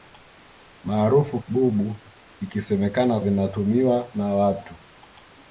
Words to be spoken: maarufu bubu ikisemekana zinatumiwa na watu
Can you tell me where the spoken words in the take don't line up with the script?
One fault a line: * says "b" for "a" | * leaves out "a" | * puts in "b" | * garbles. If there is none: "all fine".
all fine